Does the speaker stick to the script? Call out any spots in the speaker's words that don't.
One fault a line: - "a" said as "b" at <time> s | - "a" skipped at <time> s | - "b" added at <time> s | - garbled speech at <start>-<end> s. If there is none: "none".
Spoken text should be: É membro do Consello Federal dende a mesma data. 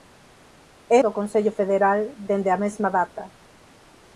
- "membro" skipped at 1.0 s